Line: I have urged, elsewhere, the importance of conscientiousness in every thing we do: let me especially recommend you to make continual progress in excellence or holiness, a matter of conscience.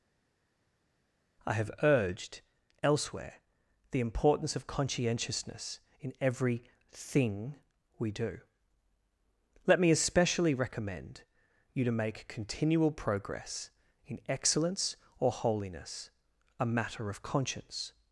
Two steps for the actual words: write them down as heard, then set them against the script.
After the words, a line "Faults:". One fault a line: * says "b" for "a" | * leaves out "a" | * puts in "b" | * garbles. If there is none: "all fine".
I have urged, elsewhere, the importance of conscientiousness in every thing we do: let me especially recommend you to make continual progress in excellence or holiness, a matter of conscience.
Faults:
all fine